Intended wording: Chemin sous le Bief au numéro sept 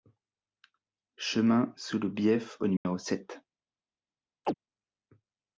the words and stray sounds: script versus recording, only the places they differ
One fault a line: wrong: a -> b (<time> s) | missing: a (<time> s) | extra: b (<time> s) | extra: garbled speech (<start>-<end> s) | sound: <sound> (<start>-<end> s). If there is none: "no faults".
sound: dropout (2.8-2.9 s)
sound: chirp (4.4-4.5 s)